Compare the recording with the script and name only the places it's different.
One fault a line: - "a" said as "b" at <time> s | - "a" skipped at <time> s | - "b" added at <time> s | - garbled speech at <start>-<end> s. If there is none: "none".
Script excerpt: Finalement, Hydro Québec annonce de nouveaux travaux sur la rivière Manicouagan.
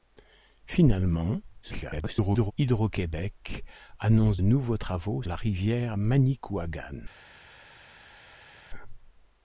- garbled speech at 1.6-2.5 s
- "de" skipped at 4.4 s
- "sur" skipped at 5.2 s